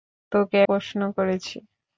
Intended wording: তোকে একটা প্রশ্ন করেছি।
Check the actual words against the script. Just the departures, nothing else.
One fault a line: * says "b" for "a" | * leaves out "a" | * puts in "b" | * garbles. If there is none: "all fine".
* leaves out "একটা"